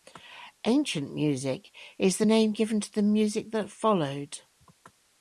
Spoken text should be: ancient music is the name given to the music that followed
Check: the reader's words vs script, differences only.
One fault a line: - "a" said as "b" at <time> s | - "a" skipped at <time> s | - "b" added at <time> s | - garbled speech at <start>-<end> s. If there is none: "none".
none